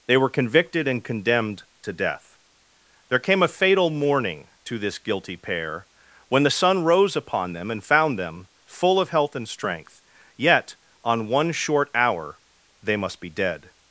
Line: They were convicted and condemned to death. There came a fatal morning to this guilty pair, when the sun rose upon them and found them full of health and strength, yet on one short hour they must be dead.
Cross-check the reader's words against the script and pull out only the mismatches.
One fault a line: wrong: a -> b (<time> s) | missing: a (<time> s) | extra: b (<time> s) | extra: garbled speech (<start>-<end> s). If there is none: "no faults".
no faults